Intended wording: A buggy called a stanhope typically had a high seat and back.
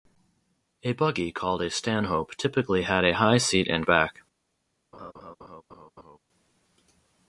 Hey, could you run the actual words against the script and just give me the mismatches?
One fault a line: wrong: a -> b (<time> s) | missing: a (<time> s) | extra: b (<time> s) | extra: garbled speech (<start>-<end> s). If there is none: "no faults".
no faults